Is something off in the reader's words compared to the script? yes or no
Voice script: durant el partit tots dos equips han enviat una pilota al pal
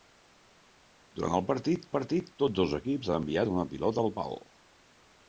yes